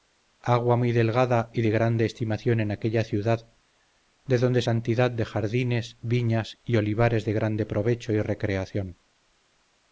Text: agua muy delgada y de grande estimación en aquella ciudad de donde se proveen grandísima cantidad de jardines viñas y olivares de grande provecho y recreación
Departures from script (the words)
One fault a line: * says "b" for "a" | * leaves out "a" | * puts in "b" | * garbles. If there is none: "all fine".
* leaves out "se proveen grandísima"